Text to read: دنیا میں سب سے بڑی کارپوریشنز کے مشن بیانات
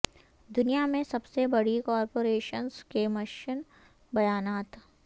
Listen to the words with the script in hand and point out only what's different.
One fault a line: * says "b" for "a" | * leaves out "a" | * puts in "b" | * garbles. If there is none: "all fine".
all fine